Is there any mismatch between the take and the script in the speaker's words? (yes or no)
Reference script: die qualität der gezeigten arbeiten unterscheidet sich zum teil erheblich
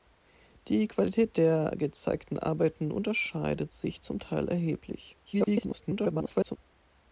yes